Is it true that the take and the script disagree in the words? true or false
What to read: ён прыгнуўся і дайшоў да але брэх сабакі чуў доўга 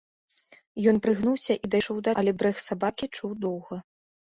false